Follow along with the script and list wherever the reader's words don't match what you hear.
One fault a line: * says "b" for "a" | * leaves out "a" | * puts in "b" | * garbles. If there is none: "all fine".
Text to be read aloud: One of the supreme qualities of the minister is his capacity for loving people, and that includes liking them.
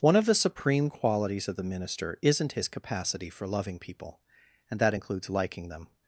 * says "isn't" for "is"